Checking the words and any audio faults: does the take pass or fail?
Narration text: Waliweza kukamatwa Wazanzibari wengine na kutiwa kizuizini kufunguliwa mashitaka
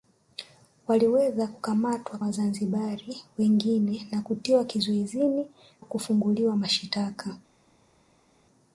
pass